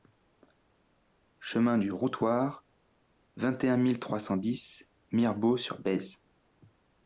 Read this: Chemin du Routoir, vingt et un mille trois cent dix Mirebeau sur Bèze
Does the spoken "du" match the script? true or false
true